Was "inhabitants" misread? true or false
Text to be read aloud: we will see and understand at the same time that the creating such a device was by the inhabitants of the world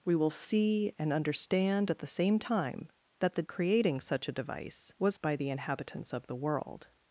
false